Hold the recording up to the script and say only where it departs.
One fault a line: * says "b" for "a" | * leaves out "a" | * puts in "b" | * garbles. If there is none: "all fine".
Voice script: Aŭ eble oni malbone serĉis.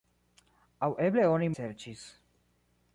* leaves out "malbone"